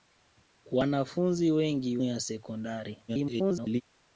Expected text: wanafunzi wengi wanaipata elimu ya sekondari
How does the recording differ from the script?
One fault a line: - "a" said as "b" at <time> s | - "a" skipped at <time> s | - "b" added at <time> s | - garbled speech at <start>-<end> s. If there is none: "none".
- "wanaipata elimu" skipped at 2.0 s
- garbled speech at 3.1-3.8 s